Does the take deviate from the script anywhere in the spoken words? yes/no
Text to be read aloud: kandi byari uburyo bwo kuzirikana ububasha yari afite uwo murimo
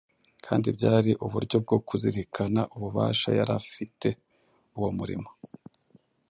no